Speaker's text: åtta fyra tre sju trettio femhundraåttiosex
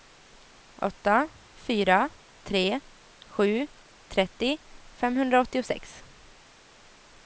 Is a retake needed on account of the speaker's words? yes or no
no